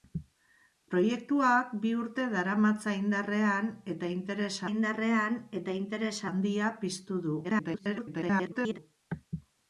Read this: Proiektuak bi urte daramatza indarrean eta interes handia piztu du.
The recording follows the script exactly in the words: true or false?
false